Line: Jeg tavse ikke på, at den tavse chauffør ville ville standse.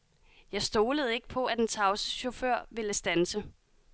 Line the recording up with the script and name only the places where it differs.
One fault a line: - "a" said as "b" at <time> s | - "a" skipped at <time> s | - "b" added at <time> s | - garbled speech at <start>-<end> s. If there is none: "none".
- "tavse" said as "stolede" at 0.6 s
- "ville" skipped at 2.9 s